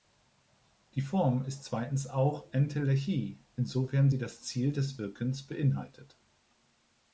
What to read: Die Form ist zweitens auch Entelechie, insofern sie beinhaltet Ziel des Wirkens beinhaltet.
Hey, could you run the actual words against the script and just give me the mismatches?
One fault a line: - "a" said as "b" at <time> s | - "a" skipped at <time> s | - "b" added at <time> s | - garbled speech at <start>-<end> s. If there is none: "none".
- "beinhaltet" said as "das" at 4.2 s